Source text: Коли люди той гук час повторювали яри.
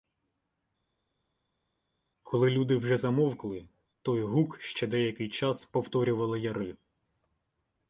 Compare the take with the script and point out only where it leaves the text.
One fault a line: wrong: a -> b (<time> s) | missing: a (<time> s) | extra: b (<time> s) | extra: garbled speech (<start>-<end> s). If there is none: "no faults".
extra: вже замовкли (2.8 s)
extra: ще деякий (4.6 s)